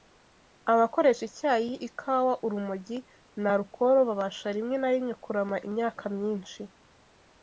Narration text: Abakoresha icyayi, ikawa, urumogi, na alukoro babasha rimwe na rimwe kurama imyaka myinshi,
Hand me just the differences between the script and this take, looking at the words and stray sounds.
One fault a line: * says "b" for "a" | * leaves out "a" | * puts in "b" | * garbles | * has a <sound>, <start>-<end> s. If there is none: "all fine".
all fine